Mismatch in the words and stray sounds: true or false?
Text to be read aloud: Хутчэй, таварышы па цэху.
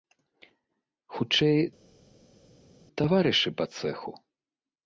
false